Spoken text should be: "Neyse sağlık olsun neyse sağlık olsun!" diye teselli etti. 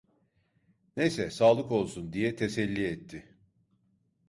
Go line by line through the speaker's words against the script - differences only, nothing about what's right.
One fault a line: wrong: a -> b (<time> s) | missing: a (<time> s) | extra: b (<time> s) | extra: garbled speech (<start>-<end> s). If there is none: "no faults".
missing: neyse sağlık olsun (2.1 s)